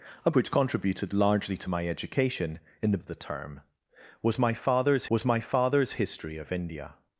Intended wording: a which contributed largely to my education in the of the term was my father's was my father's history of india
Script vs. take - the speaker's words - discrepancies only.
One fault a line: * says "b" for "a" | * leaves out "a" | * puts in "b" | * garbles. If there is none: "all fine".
all fine